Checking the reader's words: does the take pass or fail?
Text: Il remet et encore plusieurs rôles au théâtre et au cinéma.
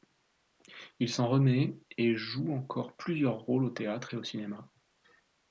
fail